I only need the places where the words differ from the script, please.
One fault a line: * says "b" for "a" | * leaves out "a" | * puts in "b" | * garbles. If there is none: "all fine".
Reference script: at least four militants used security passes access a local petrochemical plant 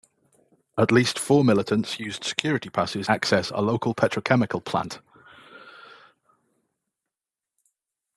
all fine